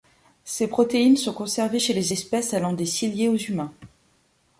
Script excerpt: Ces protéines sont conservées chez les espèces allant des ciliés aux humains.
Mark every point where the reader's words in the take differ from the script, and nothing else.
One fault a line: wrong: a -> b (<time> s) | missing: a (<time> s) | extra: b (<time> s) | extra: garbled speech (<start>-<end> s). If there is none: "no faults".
no faults